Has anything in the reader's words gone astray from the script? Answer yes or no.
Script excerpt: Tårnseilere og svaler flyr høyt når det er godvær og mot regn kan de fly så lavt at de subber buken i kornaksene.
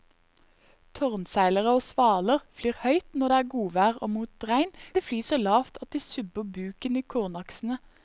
yes